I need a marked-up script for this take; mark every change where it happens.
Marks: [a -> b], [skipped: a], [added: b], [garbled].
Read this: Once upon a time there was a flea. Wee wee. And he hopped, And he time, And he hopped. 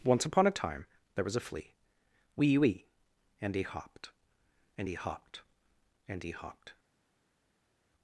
Once upon a time there was a flea. Wee wee. And he hopped, And he [time, -> hopped] And he hopped.